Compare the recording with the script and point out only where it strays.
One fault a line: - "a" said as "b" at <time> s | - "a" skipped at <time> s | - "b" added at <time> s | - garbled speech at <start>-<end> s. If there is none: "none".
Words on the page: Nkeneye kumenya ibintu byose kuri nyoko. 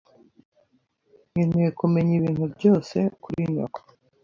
none